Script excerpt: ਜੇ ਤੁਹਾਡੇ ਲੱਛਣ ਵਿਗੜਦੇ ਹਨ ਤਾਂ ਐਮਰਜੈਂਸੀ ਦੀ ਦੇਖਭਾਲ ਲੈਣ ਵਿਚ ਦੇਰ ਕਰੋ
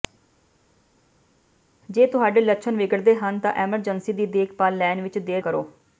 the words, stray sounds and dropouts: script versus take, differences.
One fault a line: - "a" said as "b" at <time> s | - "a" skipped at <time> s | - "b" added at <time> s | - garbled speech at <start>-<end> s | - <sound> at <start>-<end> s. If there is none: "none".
none